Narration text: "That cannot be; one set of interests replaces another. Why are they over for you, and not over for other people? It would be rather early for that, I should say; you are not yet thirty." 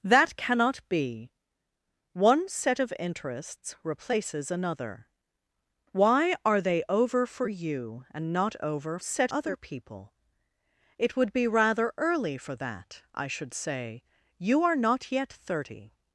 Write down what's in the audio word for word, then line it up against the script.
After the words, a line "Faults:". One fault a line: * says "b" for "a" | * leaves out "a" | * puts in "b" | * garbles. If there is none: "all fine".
"That cannot be; one set of interests replaces another. Why are they over for you, and not over set other people? It would be rather early for that, I should say; you are not yet thirty."
Faults:
* says "set" for "for"